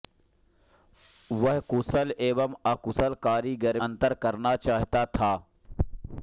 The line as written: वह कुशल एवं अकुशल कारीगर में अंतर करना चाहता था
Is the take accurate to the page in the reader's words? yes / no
no